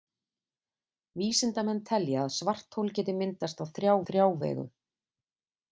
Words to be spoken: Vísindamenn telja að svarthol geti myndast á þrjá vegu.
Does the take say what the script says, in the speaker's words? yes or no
no